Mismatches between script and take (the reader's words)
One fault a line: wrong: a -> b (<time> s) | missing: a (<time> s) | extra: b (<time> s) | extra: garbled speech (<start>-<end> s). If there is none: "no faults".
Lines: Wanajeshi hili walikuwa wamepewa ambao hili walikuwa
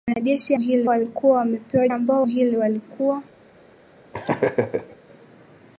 no faults